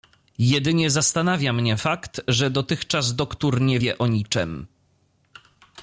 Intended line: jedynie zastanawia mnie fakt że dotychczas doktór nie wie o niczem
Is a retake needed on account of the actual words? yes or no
no